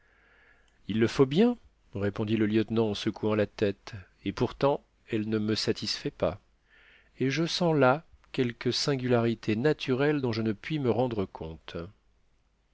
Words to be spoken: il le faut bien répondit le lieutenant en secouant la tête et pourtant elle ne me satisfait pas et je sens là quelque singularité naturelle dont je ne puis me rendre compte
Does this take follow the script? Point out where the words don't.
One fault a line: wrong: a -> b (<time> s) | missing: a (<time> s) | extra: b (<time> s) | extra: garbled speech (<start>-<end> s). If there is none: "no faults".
no faults